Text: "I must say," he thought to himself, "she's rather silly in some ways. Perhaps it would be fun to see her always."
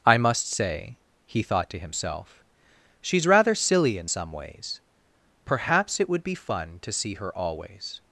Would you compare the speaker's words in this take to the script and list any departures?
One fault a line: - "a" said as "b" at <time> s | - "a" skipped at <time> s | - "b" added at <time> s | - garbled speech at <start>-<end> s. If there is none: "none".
none